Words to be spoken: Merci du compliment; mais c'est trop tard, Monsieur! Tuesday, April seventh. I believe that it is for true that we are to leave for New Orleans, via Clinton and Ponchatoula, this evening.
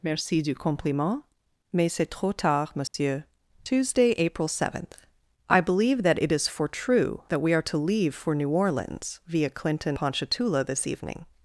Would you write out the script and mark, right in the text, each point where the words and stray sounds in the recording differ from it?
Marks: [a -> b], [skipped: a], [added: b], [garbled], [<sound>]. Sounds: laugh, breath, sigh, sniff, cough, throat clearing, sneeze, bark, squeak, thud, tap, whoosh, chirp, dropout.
Merci du compliment; mais c'est trop tard, Monsieur! [dropout] Tuesday, April seventh. I believe that it is for true that we are to leave for New Orleans, via Clinton [skipped: and] Ponchatoula, this evening.